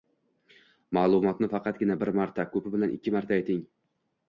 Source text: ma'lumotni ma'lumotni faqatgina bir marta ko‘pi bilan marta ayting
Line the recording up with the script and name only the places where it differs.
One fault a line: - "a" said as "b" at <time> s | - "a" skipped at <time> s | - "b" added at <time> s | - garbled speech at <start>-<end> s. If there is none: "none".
- "ma'lumotni" skipped at 1.5 s
- "ikki" added at 3.0 s